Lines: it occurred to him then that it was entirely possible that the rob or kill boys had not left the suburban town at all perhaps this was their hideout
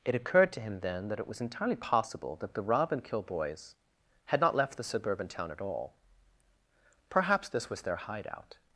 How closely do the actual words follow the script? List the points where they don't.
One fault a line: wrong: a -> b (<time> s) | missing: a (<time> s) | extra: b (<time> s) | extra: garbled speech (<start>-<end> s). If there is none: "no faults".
wrong: or -> and (2.9 s)